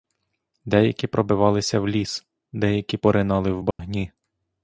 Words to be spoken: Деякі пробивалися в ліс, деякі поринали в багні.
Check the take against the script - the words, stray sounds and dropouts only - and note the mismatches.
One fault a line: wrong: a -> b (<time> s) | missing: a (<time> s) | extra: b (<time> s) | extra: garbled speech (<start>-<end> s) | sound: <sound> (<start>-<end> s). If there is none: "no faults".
sound: dropout (3.7-3.8 s)